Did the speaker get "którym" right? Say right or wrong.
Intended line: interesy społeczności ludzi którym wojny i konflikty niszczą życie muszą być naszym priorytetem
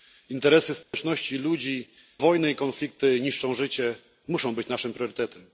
wrong